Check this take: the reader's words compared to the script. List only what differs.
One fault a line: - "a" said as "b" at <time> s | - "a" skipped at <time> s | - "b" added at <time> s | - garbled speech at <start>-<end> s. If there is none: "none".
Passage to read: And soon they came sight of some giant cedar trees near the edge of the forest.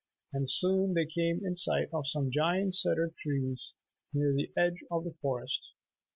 - "in" added at 1.4 s